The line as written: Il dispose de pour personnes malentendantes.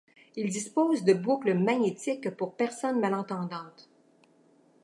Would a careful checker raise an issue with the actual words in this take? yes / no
yes